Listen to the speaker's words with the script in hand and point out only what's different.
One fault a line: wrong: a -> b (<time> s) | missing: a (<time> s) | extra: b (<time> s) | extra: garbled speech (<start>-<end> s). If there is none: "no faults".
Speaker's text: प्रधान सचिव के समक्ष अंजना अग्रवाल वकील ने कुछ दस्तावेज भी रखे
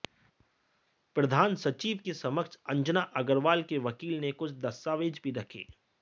extra: के (3.6 s)